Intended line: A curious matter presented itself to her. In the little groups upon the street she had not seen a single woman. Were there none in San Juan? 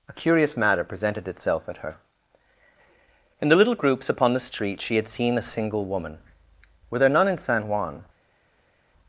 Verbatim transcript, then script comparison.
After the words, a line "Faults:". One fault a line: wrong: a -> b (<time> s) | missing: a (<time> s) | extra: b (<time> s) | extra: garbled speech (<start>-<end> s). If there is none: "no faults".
A curious matter presented itself at her. In the little groups upon the street she had seen a single woman. Were there none in San Juan?
Faults:
wrong: to -> at (1.7 s)
missing: not (5.1 s)